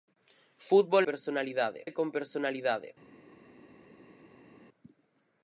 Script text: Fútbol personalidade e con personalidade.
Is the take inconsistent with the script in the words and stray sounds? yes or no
no